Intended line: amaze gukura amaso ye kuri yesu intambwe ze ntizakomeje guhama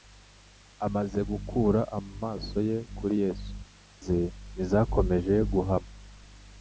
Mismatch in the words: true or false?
true